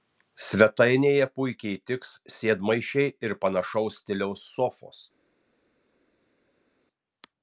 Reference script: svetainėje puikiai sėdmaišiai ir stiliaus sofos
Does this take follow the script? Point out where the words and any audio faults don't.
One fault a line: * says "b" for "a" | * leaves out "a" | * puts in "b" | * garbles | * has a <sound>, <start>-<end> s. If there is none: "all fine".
* puts in "tiks"
* puts in "panašaus"